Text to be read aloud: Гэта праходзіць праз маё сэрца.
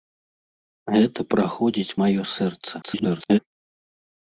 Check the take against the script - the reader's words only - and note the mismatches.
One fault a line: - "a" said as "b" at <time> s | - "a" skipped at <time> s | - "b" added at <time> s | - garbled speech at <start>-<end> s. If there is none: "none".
- "праз" skipped at 2.0 s
- garbled speech at 2.8-3.4 s